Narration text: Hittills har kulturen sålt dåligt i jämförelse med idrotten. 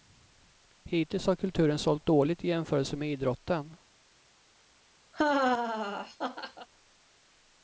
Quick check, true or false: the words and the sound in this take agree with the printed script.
false